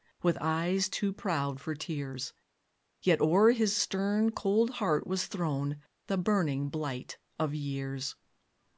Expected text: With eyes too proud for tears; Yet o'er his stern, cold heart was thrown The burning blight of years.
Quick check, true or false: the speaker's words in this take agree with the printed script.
true